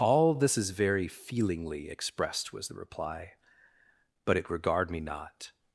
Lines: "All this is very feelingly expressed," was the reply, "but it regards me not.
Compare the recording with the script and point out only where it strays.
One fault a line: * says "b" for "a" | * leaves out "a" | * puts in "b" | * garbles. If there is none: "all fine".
* says "regard" for "regards"